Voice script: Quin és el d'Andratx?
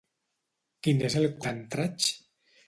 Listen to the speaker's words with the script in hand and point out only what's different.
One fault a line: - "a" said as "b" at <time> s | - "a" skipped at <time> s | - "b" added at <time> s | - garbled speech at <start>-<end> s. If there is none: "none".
none